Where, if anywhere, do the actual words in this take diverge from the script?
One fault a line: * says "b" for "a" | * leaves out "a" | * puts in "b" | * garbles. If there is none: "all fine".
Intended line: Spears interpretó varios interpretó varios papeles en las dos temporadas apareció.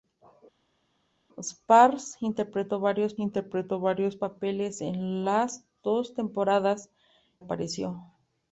all fine